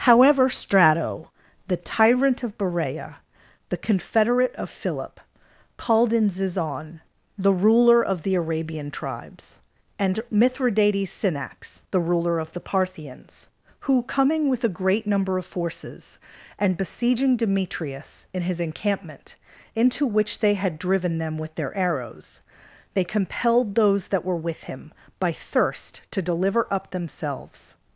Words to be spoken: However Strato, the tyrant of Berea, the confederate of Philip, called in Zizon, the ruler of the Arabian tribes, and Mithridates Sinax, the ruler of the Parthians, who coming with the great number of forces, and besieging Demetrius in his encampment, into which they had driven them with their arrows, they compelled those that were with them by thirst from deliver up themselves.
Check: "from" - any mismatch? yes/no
yes